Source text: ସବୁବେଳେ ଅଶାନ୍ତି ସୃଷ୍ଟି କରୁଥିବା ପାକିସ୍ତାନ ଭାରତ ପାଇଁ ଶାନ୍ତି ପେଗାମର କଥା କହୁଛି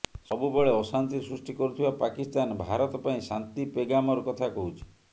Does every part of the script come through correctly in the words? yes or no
yes